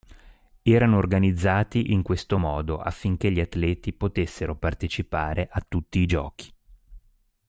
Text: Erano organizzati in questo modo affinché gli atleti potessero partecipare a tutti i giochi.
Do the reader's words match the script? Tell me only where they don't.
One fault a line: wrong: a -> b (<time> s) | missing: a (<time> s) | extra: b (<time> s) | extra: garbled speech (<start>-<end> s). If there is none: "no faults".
no faults